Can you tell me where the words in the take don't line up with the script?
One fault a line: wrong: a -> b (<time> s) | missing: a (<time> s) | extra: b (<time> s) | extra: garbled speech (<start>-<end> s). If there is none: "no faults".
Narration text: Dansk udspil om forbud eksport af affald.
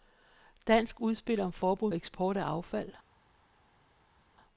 no faults